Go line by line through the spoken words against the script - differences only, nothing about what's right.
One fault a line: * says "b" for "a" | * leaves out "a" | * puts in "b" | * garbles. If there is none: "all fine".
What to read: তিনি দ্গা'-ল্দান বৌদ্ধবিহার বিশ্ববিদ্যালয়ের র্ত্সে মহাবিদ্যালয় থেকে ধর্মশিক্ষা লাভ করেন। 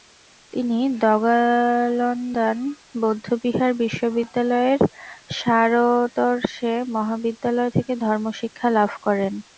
* puts in "শার"